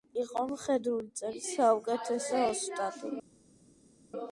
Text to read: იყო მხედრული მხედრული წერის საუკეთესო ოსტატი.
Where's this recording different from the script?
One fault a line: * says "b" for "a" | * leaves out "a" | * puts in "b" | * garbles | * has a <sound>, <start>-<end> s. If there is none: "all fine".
* leaves out "მხედრული"